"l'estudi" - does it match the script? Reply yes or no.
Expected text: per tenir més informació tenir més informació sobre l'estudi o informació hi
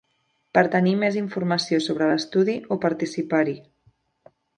yes